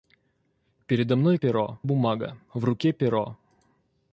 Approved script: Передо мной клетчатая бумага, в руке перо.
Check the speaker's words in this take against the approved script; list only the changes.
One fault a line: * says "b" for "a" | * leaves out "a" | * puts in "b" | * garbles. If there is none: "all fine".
* says "перо" for "клетчатая"